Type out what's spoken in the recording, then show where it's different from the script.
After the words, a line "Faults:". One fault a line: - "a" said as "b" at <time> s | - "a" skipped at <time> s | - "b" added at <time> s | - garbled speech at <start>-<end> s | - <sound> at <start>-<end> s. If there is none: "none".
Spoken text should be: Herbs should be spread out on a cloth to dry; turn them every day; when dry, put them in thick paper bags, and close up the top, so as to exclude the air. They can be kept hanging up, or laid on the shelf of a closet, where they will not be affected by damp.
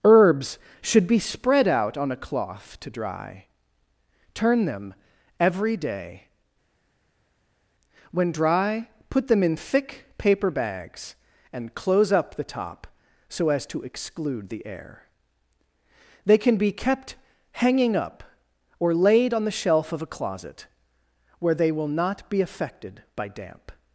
Herbs should be spread out on a cloth to dry; turn them every day; when dry, put them in thick paper bags, and close up the top, so as to exclude the air. They can be kept hanging up, or laid on the shelf of a closet, where they will not be affected by damp.
Faults:
none